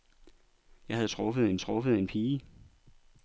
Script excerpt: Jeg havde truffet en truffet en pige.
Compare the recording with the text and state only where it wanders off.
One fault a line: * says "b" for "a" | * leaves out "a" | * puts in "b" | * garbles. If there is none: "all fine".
all fine